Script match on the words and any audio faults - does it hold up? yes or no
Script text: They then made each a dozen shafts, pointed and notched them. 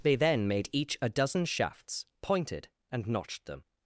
yes